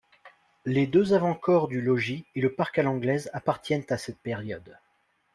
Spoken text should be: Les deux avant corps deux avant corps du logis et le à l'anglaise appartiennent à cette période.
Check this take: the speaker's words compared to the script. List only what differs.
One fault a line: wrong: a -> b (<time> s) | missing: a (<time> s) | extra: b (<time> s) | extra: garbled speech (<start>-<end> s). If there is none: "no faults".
missing: deux avant corps (1.7 s)
extra: parc (2.5 s)